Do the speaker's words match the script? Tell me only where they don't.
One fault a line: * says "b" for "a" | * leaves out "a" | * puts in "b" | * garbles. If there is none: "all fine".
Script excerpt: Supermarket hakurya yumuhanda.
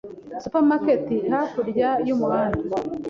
all fine